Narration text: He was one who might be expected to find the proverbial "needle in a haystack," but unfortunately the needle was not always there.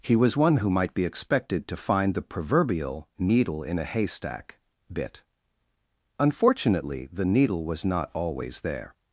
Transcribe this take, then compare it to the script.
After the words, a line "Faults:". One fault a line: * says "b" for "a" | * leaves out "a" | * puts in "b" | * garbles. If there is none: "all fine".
He was one who might be expected to find the proverbial "needle in a haystack," bit unfortunately the needle was not always there.
Faults:
* says "bit" for "but"